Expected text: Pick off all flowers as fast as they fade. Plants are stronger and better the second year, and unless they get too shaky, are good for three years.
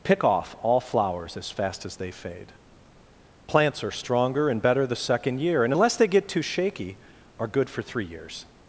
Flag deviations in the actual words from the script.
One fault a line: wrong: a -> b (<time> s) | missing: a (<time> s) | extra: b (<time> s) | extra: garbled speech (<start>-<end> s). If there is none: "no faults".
no faults